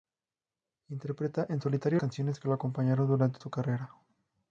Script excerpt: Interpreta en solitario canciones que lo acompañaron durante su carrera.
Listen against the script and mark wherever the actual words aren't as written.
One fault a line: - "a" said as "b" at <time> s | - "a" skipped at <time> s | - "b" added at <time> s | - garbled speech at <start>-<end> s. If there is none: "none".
none